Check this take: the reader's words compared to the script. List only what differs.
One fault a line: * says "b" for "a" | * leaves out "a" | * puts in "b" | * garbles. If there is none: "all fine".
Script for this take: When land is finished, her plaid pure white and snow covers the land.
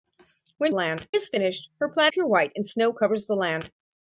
all fine